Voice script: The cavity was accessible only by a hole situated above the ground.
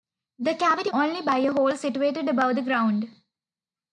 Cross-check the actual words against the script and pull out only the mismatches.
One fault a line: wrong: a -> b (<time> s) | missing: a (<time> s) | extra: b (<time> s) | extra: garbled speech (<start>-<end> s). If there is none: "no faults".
missing: was accessible (0.9 s)